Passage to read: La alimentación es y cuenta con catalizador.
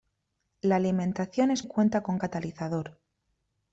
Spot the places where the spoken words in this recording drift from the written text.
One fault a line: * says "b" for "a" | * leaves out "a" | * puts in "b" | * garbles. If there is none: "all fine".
all fine